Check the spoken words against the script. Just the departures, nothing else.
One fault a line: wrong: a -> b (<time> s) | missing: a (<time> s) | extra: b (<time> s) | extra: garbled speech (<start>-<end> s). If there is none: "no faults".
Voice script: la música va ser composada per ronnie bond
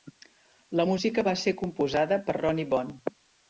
no faults